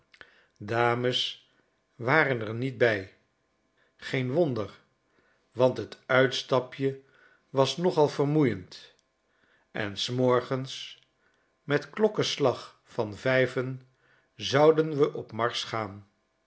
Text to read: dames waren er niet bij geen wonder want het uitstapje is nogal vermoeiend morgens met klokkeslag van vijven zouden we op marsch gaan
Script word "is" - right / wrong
wrong